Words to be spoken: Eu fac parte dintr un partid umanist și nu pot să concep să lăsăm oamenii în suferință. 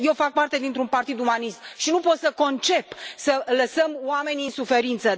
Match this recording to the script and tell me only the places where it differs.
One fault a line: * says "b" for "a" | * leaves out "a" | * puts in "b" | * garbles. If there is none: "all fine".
all fine